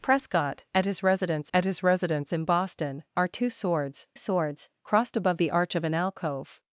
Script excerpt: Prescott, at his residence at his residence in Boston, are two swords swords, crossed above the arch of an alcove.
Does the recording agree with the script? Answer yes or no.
yes